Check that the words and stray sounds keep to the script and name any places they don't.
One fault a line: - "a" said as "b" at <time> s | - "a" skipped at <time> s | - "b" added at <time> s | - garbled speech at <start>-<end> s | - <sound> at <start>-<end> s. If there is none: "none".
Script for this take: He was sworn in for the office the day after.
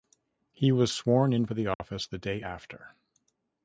- dropout at 1.7-1.8 s